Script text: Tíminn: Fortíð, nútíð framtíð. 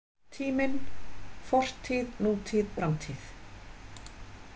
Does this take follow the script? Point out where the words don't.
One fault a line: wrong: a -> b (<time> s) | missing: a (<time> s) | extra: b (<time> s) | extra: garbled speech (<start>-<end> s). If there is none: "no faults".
no faults